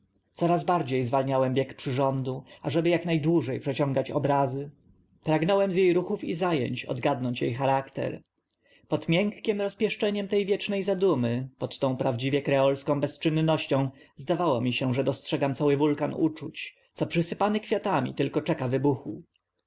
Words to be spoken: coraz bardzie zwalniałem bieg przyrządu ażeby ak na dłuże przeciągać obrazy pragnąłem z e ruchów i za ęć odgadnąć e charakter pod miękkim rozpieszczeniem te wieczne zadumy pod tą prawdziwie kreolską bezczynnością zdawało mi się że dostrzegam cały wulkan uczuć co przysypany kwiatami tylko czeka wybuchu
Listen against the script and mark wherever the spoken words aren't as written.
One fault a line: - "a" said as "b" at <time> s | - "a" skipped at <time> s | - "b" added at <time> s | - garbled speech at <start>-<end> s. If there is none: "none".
none